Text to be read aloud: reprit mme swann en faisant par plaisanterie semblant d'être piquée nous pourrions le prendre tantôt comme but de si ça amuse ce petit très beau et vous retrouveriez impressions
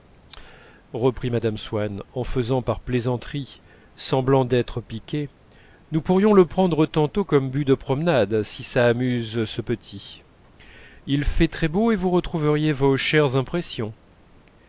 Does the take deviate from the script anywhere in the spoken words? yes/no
yes